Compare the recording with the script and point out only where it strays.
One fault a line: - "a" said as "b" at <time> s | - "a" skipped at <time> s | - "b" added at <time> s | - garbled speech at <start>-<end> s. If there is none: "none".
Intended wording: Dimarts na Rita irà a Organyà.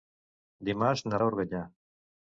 - "Rita irà" skipped at 1.2 s